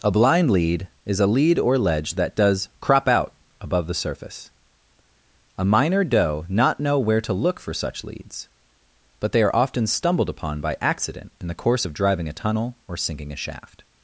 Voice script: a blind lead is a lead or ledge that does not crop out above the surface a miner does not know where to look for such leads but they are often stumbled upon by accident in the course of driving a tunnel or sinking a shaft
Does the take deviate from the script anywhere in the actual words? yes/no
yes